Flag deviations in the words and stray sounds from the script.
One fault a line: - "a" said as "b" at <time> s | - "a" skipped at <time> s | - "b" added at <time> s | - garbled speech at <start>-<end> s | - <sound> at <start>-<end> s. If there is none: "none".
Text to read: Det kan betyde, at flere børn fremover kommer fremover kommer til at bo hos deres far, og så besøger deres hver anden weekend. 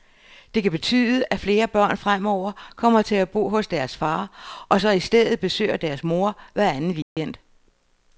- "fremover kommer" skipped at 3.0 s
- "i stedet" added at 4.9 s
- "mor" added at 6.0 s
- dropout at 7.0-7.2 s